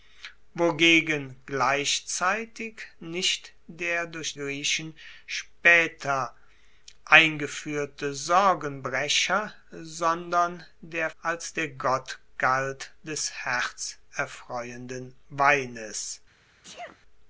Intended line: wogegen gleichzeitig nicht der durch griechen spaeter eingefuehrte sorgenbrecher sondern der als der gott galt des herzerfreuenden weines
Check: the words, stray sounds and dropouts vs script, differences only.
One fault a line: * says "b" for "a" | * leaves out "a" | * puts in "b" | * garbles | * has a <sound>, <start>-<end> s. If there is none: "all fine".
* has a sneeze, 16.6-17.0 s